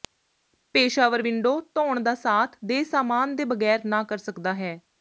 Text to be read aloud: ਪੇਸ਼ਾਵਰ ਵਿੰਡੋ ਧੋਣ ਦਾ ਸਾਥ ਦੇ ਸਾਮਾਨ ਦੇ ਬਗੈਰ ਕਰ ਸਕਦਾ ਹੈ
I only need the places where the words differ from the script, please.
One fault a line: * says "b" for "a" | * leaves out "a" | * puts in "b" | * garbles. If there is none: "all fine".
* puts in "ਨਾ"